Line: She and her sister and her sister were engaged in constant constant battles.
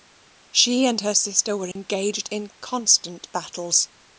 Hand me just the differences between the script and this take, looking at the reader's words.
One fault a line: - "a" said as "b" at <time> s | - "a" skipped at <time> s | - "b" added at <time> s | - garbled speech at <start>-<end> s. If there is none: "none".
- "and her sister" skipped at 1.6 s
- "constant" skipped at 3.3 s